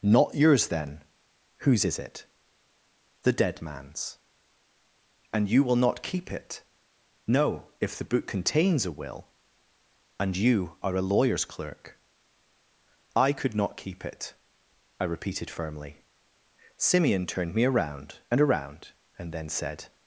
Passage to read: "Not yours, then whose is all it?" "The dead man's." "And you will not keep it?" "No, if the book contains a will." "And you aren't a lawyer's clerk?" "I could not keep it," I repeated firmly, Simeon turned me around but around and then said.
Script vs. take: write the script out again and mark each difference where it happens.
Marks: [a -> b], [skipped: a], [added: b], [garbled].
"Not yours, then whose is [skipped: all] it?" "The dead man's." "And you will not keep it?" "No, if the book contains a will." "And you [aren't -> are] a lawyer's clerk?" "I could not keep it," I repeated firmly, Simeon turned me around [but -> and] around and then said.